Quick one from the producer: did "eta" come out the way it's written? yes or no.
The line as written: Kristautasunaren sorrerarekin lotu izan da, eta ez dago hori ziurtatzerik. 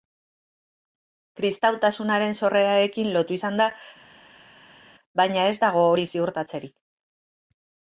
no